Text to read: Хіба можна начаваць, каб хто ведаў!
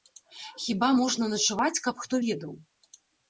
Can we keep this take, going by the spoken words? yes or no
yes